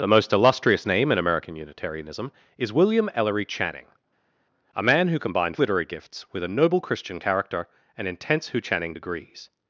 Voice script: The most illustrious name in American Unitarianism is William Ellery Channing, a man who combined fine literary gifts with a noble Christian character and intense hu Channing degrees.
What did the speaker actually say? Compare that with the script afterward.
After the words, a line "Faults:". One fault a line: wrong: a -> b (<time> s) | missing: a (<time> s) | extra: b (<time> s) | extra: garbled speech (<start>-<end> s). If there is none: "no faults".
The most illustrious name in American Unitarianism is William Ellery Channing, a man who combined literary gifts with a noble Christian character and intense hu Channing degrees.
Faults:
missing: fine (5.6 s)